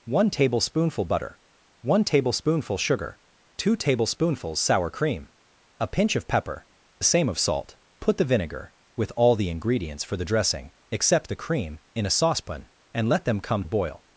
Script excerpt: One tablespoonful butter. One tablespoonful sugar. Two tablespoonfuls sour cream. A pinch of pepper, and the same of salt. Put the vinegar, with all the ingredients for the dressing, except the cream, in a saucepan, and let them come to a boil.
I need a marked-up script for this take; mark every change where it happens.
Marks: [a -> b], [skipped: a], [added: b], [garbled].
One tablespoonful butter. One tablespoonful sugar. Two tablespoonfuls sour cream. A pinch of pepper, [skipped: and] the same of salt. Put the vinegar, with all the ingredients for the dressing, except the cream, in a saucepan, and let them come [skipped: to] a boil.